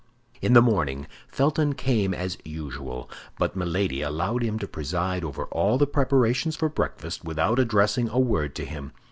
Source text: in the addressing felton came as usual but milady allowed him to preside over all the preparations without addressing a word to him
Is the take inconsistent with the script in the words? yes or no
yes